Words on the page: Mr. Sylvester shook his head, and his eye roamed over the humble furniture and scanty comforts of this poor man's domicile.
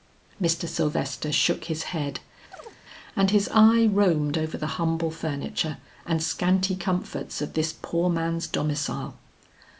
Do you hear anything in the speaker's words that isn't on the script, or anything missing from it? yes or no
no